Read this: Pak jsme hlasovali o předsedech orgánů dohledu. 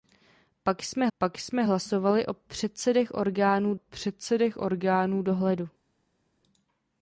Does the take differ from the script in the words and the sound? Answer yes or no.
yes